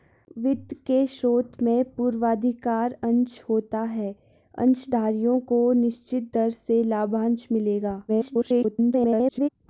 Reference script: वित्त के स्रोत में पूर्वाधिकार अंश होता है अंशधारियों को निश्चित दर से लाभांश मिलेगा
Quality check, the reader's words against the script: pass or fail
fail